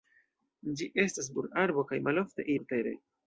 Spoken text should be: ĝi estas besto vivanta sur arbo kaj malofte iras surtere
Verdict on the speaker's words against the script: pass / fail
fail